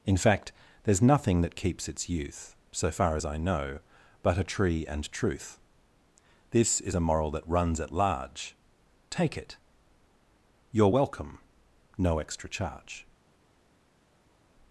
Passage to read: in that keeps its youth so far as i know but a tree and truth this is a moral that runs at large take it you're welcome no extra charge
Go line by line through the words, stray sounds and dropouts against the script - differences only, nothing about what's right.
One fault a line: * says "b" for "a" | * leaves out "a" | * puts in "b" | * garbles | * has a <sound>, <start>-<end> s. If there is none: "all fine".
* puts in "fact there's nothing"